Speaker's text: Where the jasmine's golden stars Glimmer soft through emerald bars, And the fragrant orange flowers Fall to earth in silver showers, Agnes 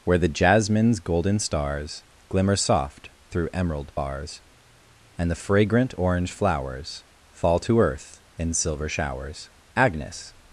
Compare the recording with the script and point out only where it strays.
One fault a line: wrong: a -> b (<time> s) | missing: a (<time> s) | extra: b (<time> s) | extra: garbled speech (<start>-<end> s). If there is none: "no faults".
no faults